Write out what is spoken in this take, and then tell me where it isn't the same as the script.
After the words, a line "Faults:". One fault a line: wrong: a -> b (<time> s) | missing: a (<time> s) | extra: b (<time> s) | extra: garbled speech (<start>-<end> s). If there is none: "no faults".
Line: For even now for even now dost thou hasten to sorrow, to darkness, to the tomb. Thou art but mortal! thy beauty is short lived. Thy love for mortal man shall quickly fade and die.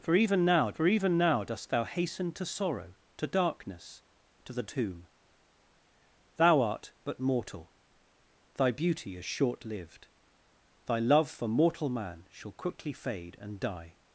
For even now for even now dost thou hasten to sorrow, to darkness, to the tomb. Thou art but mortal! thy beauty is short lived. Thy love for mortal man shall quickly fade and die.
Faults:
no faults